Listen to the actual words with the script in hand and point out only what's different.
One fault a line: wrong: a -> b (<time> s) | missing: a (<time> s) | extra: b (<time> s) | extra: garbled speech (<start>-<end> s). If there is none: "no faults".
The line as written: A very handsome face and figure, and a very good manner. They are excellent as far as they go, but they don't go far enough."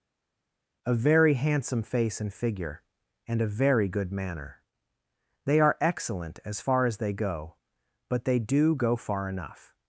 wrong: don't -> do (8.4 s)